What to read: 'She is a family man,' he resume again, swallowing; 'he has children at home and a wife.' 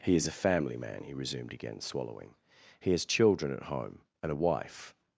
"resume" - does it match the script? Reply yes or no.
no